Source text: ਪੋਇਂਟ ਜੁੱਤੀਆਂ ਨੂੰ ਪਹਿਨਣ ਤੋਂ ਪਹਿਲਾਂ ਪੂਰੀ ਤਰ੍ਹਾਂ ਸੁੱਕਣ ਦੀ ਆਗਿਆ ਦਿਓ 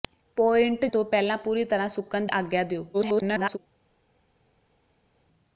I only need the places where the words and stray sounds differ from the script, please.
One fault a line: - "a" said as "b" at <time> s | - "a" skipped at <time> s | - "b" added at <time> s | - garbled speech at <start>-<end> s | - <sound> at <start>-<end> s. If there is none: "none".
- "ਜੁੱਤੀਆਂ ਨੂੰ ਪਹਿਨਣ" skipped at 0.8 s
- "ਦੀ" skipped at 2.3 s
- garbled speech at 2.9-3.6 s